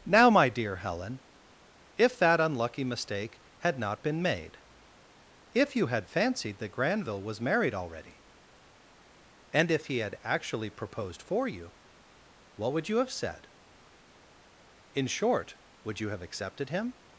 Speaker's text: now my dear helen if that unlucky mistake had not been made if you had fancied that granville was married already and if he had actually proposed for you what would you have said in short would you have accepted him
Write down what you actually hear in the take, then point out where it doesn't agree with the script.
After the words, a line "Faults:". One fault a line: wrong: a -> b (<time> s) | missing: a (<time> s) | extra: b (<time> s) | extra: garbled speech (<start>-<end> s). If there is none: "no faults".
now my dear helen if that unlucky mistake had not been made if you had fancied that granville was married already and if he had actually proposed for you what would you have said in short would you have accepted him
Faults:
no faults